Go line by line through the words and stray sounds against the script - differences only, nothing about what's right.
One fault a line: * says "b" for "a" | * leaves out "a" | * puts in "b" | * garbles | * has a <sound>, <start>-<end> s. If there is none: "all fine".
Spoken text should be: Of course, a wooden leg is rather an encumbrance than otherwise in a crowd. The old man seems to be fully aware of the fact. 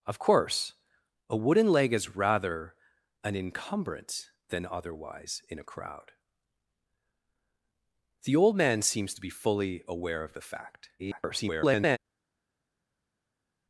* garbles